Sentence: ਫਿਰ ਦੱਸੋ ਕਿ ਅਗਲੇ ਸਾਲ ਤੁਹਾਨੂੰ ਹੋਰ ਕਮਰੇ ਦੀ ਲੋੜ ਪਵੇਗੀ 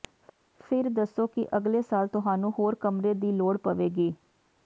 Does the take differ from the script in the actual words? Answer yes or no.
no